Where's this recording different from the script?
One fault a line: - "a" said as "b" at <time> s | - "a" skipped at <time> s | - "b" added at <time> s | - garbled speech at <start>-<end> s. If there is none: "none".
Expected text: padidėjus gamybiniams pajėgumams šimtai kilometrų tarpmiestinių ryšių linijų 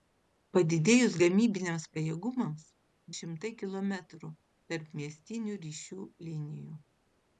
none